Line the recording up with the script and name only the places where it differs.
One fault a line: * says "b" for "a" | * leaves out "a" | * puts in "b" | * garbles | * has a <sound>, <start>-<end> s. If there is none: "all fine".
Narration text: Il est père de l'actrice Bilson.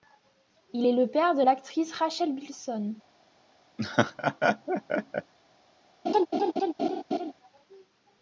* puts in "le"
* puts in "Rachel"
* has a laugh, 3.8-5.3 s
* has a laugh, 6.0-7.3 s